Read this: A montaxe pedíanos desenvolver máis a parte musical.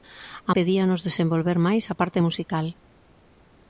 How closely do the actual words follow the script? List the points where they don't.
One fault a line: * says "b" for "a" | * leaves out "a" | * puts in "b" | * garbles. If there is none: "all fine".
* leaves out "montaxe"